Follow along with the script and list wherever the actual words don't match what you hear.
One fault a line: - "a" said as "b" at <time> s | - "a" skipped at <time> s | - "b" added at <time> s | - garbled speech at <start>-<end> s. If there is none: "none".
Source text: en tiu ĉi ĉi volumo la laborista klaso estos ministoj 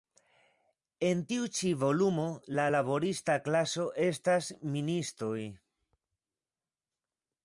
- "ĉi" skipped at 1.7 s
- "estos" said as "estas" at 4.1 s